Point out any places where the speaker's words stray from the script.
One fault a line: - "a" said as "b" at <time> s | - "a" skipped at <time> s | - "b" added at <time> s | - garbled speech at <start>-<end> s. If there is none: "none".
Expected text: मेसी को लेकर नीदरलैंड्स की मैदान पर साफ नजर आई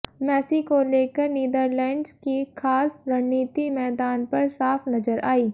- "खास रणनीति" added at 2.6 s